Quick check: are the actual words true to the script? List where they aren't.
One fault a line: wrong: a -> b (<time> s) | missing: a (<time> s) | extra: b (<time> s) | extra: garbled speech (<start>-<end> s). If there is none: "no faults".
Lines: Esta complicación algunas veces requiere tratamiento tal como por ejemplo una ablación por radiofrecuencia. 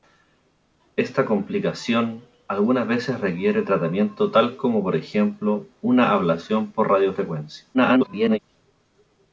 extra: garbled speech (7.7-8.4 s)